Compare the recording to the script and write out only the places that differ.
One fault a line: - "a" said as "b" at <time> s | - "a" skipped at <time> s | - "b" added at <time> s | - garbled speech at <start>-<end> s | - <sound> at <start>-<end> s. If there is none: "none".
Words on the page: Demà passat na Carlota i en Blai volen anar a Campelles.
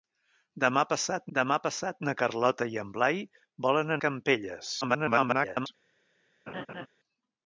- "demà passat" added at 1.4 s
- "anar" skipped at 4.0 s
- garbled speech at 4.8-5.7 s
- laugh at 6.5-6.9 s